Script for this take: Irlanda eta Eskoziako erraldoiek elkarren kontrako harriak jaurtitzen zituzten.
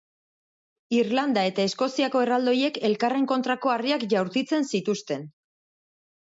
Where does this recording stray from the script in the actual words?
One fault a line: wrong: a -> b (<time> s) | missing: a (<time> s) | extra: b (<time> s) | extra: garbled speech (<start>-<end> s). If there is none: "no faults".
no faults